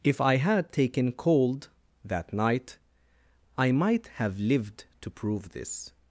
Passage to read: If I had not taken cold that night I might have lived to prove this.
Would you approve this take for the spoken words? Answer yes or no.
no